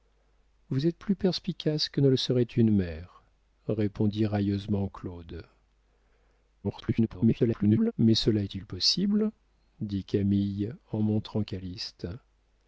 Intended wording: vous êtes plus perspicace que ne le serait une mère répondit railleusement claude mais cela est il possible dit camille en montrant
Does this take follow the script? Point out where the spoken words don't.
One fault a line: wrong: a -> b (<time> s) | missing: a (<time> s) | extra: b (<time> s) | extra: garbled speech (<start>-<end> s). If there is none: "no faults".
extra: garbled speech (6.6-7.9 s)